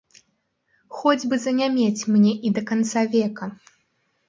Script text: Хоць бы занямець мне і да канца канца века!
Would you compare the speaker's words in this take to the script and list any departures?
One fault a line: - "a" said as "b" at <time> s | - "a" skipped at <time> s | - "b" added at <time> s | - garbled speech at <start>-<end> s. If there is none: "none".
- "канца" skipped at 3.1 s